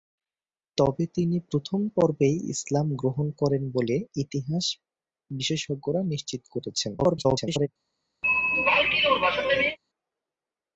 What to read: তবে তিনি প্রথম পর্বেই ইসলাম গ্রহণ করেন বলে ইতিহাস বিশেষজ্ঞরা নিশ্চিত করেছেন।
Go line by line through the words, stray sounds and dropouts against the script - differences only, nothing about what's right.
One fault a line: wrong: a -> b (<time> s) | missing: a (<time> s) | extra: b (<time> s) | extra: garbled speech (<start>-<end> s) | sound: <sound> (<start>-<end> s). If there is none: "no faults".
extra: garbled speech (7.0-7.7 s)
sound: throat clearing (8.2-9.8 s)